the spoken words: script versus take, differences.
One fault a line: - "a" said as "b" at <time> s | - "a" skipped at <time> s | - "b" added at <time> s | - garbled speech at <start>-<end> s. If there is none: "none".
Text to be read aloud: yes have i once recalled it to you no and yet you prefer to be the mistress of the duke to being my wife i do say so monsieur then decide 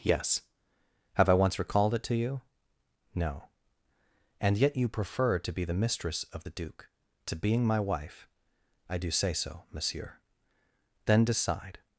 none